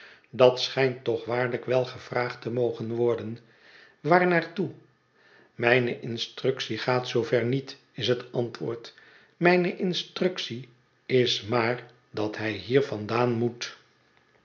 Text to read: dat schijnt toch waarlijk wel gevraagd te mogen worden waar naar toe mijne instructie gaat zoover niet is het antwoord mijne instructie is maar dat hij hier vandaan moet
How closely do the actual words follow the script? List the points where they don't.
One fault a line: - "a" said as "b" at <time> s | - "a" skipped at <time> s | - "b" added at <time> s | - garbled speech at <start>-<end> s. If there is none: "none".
none